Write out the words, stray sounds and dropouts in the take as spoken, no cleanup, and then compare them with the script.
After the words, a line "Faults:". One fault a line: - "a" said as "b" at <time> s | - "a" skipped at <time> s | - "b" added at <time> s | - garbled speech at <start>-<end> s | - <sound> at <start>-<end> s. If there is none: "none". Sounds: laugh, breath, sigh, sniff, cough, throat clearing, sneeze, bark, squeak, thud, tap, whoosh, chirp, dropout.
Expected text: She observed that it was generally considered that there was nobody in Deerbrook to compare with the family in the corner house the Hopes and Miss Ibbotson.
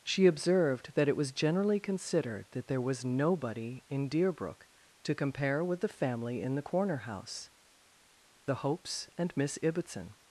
She observed that it was generally considered that there was nobody in Deerbrook to compare with the family in the corner house the Hopes and Miss Ibbotson.
Faults:
none